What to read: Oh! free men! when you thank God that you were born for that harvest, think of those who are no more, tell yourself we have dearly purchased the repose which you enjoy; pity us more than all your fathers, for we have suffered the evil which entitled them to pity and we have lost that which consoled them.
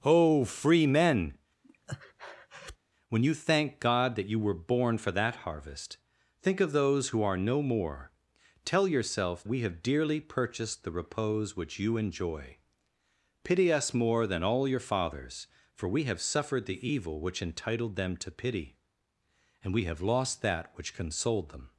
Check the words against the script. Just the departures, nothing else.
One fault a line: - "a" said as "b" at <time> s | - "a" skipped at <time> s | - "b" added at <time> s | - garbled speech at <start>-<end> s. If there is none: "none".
none